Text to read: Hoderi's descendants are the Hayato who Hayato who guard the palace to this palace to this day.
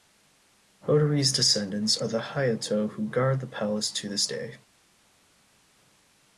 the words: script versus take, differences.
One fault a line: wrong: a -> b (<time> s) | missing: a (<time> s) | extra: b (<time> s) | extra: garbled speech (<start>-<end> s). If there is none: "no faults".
missing: Hayato who (3.1 s)
missing: palace to this (4.3 s)